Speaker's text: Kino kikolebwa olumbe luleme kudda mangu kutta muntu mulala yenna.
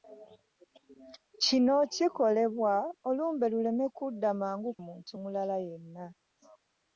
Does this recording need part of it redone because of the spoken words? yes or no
yes